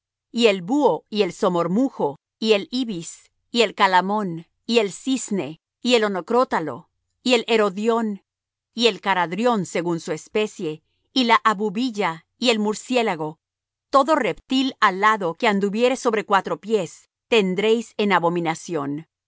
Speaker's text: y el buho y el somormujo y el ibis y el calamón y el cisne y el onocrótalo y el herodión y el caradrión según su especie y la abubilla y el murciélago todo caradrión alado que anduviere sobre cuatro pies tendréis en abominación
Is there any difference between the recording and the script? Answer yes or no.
yes